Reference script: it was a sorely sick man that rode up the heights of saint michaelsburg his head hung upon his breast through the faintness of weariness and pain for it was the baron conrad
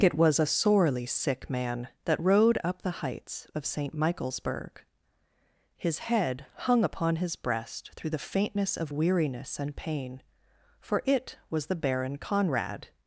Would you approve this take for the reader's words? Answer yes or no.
yes